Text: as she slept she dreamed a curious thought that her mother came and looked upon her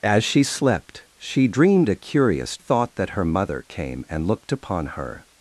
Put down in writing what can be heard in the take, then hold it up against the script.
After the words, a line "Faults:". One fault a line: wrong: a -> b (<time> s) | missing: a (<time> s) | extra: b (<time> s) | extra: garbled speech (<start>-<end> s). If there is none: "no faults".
as she slept she dreamed a curious thought that her mother came and looked upon her
Faults:
no faults